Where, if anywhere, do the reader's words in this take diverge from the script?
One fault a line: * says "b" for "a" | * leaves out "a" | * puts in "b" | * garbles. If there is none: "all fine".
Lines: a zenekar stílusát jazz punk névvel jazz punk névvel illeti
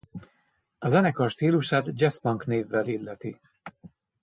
* leaves out "jazz punk névvel"